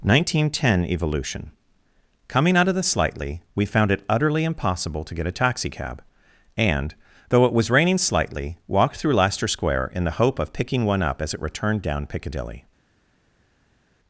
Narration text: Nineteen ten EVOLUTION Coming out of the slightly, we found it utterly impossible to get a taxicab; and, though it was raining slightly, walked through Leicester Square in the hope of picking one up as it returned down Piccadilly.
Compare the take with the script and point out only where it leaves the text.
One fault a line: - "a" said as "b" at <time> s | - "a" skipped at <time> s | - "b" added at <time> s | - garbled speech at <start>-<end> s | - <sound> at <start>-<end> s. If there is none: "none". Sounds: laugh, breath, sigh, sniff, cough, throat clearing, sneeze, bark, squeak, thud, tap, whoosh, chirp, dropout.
none